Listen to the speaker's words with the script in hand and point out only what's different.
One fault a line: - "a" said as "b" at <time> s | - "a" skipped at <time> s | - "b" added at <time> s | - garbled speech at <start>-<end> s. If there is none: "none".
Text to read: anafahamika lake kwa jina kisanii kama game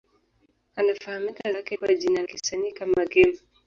none